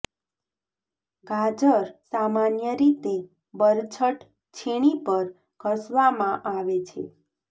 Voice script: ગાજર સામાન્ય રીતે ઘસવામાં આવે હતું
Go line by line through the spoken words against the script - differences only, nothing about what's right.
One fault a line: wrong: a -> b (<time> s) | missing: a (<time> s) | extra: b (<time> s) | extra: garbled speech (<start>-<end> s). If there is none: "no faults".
extra: બરછટ છીણી પર (3.5 s)
wrong: હતું -> છે (6.9 s)